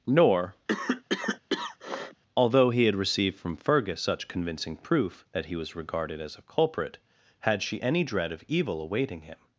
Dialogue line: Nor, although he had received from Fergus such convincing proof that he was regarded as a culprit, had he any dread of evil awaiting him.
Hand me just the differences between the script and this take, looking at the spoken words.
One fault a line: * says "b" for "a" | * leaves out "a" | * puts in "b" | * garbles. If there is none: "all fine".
* says "she" for "he"